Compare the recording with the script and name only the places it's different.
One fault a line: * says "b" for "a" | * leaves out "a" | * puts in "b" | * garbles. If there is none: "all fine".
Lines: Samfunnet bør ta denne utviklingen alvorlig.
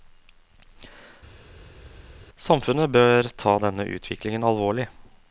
all fine